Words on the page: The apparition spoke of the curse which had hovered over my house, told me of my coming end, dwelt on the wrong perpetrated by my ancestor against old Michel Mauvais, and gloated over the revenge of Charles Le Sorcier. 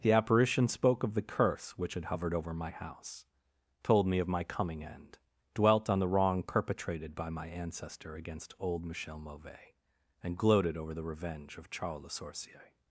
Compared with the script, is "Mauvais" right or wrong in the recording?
right